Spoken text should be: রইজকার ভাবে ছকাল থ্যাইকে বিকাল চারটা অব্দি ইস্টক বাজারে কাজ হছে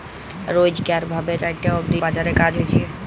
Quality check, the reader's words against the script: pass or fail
fail